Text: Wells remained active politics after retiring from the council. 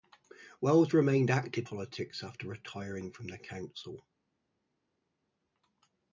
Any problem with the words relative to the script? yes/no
no